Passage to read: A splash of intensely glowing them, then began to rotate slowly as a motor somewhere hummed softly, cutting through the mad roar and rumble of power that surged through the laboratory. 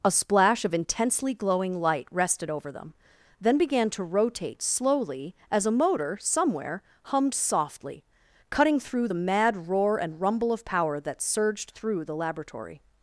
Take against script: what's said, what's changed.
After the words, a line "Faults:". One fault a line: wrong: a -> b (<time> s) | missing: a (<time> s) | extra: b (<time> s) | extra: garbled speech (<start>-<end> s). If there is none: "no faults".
A splash of intensely glowing light rested over them, then began to rotate slowly as a motor somewhere hummed softly, cutting through the mad roar and rumble of power that surged through the laboratory.
Faults:
extra: light rested over (1.8 s)